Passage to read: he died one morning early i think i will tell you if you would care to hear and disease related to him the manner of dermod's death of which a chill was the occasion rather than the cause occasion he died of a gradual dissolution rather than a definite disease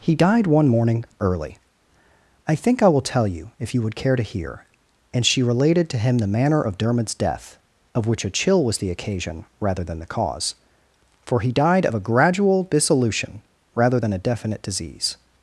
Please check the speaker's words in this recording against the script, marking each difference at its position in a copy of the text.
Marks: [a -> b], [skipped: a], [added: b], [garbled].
he died one morning early i think i will tell you if you would care to hear and [disease -> she] related to him the manner of dermod's death of which a chill was the occasion rather than the cause [occasion -> for] he died of a gradual dissolution rather than a definite disease